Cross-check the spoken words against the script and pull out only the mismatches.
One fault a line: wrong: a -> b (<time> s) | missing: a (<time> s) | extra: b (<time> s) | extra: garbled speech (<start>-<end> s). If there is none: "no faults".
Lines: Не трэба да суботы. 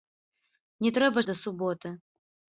no faults